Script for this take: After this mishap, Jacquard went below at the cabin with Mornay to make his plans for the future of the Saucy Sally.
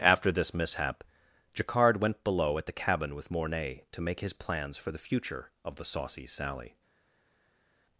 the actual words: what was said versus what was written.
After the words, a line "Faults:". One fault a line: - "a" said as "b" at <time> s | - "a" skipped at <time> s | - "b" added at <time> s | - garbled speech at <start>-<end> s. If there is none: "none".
After this mishap, Jacquard went below at the cabin with Mornay to make his plans for the future of the Saucy Sally.
Faults:
none